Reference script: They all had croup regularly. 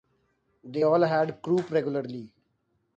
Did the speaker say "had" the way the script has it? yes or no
yes